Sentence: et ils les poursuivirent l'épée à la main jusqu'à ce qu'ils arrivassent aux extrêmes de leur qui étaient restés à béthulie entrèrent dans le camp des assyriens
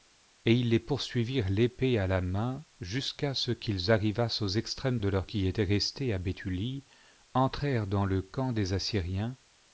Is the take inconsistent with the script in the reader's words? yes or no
no